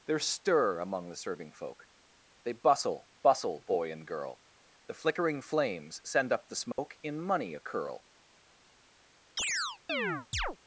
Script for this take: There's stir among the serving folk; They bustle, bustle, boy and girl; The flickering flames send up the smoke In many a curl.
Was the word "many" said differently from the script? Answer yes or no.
yes